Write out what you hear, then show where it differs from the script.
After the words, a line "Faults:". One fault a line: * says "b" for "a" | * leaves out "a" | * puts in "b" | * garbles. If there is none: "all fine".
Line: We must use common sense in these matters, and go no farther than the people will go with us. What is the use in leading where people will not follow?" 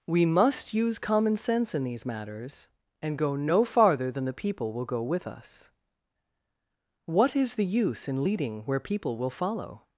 We must use common sense in these matters, and go no farther than the people will go with us. What is the use in leading where people will follow?"
Faults:
* leaves out "not"